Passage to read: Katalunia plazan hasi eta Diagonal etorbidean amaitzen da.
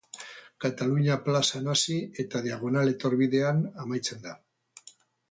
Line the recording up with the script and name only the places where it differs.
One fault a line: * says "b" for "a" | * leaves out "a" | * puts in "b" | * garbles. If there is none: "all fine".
all fine